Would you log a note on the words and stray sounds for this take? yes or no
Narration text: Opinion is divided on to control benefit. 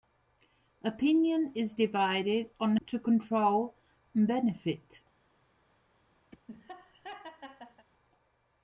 yes